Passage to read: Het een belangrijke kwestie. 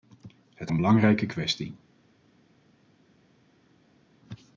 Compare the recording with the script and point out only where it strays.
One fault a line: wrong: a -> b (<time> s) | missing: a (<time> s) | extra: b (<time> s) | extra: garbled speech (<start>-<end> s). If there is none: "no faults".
no faults